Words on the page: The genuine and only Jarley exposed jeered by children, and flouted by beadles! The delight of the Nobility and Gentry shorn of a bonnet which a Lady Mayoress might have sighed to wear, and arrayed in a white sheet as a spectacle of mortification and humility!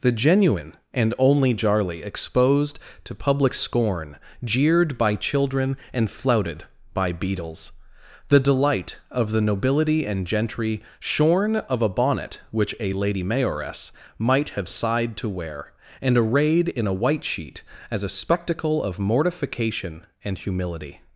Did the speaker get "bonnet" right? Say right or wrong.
right